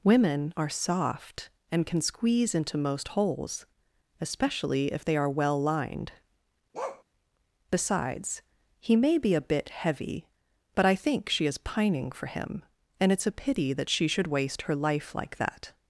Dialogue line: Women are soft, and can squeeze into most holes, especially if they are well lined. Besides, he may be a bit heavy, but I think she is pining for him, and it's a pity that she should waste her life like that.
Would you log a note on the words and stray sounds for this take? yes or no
yes